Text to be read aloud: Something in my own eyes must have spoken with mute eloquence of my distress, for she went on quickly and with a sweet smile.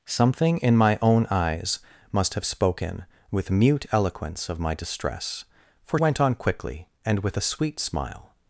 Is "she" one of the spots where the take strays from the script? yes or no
yes